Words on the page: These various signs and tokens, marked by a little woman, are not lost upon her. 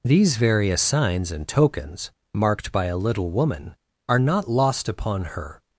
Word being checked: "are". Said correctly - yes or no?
yes